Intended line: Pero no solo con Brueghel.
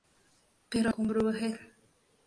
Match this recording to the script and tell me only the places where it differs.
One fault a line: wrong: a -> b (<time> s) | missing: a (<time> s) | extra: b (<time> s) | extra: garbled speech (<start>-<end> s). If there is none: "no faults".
missing: no solo (0.9 s)